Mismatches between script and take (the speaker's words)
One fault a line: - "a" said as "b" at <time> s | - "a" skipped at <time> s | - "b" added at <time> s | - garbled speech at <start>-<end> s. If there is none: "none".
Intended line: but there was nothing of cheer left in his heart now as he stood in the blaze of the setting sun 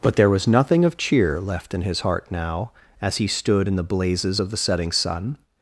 - "blaze" said as "blazes" at 3.8 s